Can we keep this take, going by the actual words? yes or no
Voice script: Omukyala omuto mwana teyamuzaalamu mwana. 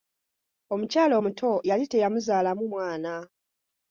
no